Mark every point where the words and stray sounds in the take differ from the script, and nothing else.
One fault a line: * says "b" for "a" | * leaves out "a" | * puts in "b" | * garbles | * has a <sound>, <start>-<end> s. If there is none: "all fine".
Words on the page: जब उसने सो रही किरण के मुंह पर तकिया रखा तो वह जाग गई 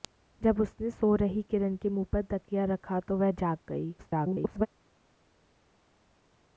* garbles